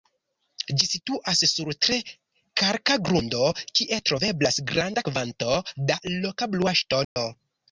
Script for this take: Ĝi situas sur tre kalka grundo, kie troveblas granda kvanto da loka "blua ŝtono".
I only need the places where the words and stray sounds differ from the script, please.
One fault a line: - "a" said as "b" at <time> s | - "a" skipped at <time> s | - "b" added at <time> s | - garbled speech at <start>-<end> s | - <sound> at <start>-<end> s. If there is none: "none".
- dropout at 7.0-7.2 s